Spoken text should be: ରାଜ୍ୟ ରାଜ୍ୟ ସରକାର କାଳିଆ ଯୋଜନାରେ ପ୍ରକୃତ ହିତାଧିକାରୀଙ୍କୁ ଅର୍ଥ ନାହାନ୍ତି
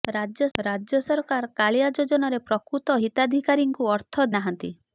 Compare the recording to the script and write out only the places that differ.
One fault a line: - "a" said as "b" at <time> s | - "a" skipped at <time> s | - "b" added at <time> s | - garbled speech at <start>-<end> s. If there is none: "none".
none